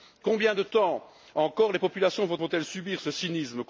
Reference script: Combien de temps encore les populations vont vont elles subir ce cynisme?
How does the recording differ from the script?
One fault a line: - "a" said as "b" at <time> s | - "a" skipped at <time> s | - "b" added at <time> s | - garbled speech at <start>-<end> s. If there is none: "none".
none